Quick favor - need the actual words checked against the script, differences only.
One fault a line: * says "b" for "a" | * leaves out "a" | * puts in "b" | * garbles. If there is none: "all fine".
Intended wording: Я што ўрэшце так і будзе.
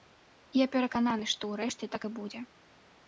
* puts in "перакананы"